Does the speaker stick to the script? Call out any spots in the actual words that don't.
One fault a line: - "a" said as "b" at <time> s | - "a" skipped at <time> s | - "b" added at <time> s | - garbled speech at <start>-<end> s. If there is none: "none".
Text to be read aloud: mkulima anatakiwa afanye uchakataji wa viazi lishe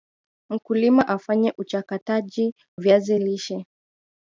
- "anatakiwa" skipped at 1.1 s
- "wa" skipped at 2.5 s